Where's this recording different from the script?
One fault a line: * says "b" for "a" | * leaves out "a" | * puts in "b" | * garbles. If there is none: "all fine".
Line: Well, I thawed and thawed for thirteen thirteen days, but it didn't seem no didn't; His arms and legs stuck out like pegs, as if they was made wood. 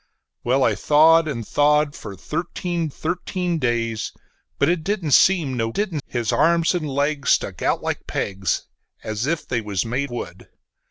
all fine